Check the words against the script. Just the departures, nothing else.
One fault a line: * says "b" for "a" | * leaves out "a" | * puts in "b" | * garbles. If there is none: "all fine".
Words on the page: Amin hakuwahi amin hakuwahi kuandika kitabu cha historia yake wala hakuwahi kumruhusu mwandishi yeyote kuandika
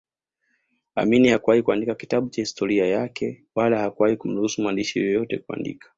* leaves out "amin hakuwahi"